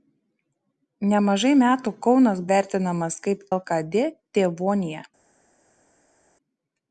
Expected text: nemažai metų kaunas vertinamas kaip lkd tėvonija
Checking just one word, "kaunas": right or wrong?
right